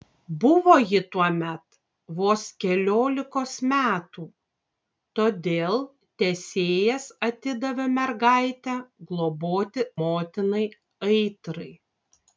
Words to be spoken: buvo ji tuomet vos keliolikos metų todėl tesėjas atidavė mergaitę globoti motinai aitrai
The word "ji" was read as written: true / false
true